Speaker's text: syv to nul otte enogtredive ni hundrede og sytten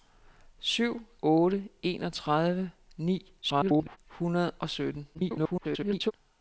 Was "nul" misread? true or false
true